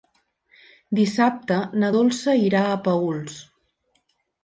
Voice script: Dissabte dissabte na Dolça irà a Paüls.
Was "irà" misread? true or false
false